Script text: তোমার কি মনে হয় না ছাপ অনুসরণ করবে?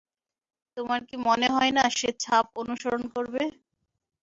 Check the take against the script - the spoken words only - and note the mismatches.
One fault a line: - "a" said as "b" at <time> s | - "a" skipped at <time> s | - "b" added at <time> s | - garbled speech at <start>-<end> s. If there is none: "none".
- "সে" added at 2.0 s